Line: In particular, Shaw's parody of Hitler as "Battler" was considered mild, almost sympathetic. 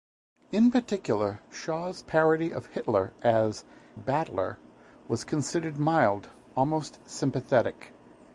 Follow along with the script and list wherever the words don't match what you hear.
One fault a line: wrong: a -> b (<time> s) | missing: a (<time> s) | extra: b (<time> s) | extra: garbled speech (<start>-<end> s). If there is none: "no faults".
no faults